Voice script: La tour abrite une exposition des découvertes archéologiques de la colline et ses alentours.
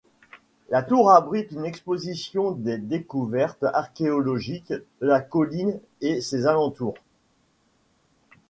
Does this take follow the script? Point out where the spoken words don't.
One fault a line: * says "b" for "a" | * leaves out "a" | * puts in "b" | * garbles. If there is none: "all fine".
all fine